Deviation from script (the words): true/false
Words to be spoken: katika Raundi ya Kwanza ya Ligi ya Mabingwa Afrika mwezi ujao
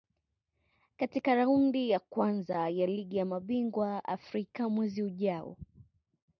false